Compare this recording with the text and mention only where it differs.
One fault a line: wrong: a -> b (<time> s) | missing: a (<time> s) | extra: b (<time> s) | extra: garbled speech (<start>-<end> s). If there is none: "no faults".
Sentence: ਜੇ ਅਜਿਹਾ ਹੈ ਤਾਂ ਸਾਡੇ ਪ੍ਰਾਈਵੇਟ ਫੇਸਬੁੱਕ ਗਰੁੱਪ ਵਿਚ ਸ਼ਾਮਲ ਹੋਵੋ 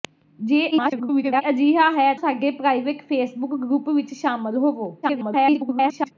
extra: garbled speech (0.7-1.4 s)
missing: ਤਾਂ (2.1 s)
extra: garbled speech (5.0-6.1 s)